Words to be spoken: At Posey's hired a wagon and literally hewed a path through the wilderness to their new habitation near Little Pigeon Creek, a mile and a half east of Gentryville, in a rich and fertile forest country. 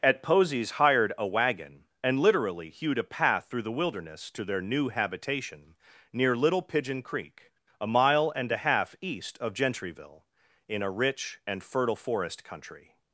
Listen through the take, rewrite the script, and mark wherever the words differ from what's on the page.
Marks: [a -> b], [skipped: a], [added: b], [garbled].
At Posey's hired a wagon and literally hewed a path through the wilderness to their new habitation near Little Pigeon Creek, a mile and a half east of Gentryville, in a rich and fertile forest country.